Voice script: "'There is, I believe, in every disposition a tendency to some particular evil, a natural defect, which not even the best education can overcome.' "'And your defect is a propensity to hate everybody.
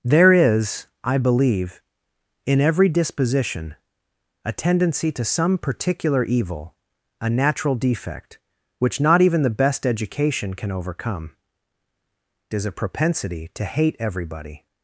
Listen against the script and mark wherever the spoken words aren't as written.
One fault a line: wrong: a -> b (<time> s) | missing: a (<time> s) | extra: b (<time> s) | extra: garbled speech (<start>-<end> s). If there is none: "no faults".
missing: And your defect (11.3 s)